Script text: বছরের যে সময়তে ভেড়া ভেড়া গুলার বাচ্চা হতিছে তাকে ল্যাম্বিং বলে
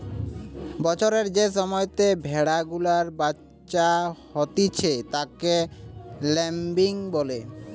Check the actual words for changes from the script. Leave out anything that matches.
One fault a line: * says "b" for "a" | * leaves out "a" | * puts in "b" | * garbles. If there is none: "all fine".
* leaves out "ভেড়া"